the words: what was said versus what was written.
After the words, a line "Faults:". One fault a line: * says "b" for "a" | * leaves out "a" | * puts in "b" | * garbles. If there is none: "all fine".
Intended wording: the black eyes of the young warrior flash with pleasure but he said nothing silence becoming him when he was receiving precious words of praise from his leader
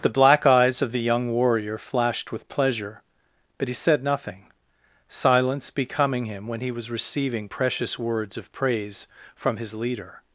the black eyes of the young warrior flashed with pleasure but he said nothing silence becoming him when he was receiving precious words of praise from his leader
Faults:
* says "flashed" for "flash"